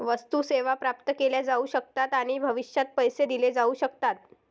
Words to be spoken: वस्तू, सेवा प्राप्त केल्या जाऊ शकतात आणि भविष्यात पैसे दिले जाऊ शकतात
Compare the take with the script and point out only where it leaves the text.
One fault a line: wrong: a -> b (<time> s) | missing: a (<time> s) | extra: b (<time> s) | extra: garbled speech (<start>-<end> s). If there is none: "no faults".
no faults